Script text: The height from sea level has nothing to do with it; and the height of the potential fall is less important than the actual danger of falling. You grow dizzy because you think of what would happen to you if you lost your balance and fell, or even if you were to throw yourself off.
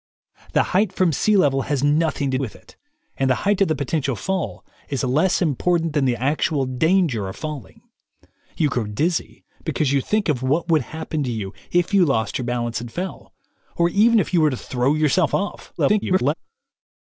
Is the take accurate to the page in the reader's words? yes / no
no